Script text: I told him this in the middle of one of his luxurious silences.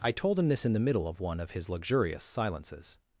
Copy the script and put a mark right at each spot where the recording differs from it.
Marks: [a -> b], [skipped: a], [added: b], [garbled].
I told him this in the middle of one of his luxurious silences.